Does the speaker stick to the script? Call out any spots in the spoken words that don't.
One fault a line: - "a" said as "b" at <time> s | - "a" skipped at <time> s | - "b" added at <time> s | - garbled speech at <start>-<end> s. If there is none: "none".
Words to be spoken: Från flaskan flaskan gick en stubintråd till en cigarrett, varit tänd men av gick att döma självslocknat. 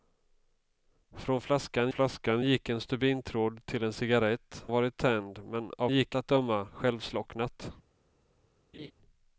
none